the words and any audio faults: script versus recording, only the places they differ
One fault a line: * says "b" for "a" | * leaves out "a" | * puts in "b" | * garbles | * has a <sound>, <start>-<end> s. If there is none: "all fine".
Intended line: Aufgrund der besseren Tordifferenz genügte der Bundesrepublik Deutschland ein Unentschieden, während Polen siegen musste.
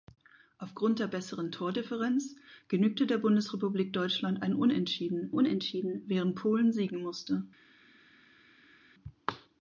* puts in "Unentschieden"